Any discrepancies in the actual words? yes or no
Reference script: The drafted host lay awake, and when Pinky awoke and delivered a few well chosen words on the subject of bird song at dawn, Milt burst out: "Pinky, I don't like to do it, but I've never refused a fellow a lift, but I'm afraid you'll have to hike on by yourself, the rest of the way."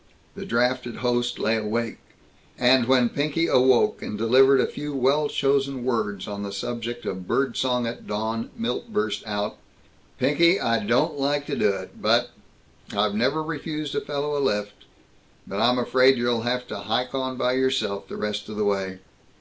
no